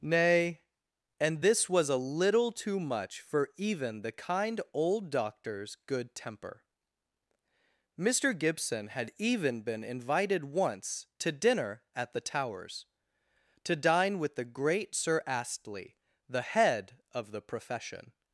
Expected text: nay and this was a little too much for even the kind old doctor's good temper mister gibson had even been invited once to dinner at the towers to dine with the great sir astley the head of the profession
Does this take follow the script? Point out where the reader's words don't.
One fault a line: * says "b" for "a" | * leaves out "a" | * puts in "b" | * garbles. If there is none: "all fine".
all fine